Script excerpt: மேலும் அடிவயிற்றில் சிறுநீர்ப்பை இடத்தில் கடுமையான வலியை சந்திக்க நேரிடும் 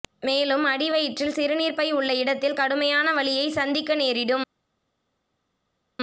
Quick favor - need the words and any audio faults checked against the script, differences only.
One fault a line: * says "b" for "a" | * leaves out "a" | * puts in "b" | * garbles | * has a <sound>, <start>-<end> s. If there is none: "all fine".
* puts in "உள்ள"